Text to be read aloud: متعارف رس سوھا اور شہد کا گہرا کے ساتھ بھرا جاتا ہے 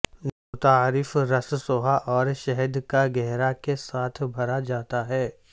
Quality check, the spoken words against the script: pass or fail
pass